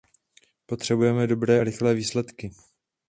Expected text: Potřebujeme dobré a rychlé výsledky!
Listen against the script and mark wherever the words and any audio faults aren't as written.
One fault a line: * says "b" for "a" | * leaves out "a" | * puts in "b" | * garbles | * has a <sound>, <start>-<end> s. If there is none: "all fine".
all fine